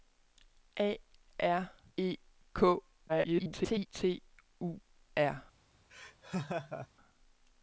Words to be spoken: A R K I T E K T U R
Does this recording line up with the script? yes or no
no